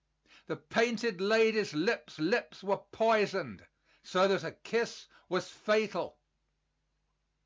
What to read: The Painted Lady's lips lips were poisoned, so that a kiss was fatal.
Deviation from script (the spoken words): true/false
false